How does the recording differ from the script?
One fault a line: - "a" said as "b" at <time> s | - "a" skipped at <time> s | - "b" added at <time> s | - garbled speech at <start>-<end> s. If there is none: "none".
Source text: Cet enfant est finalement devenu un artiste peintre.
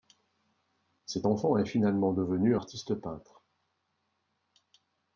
- "un" skipped at 2.6 s